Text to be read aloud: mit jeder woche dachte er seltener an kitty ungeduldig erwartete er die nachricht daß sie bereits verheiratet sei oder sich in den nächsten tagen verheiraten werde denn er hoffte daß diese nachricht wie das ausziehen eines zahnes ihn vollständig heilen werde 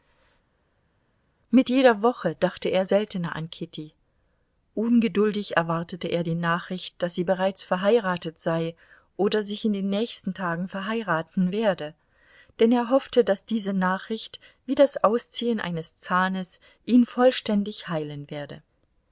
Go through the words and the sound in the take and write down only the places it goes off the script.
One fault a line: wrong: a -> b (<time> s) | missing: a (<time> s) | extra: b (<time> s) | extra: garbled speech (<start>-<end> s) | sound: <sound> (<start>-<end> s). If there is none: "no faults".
no faults